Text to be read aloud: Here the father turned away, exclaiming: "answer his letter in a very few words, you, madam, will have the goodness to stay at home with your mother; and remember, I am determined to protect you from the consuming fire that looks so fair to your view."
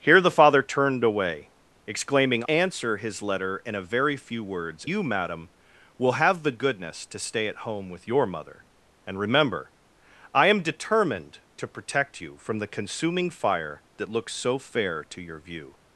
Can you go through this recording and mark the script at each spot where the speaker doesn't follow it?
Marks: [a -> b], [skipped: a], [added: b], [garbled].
Here the father turned away, exclaiming: "answer his letter in a very few words, you, madam, will have the goodness to stay at home with your mother; and remember, I am determined to protect you from the consuming fire that looks so fair to your view."